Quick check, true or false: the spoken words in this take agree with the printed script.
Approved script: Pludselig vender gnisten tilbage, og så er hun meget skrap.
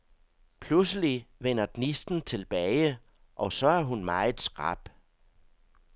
true